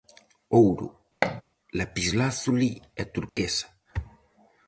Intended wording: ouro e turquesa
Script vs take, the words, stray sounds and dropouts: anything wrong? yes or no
yes